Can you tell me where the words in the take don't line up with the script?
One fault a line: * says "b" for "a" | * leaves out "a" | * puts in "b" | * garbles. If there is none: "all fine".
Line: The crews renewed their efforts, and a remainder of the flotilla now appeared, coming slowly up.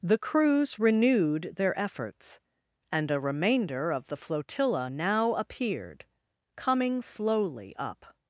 all fine